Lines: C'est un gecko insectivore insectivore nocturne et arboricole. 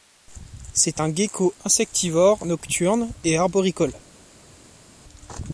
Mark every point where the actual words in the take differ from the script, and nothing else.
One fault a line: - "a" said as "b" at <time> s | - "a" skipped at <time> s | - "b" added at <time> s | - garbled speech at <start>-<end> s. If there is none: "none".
- "insectivore" skipped at 2.5 s